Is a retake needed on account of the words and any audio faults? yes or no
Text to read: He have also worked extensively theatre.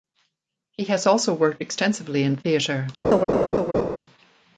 yes